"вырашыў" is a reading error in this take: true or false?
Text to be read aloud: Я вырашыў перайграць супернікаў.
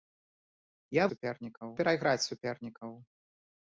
true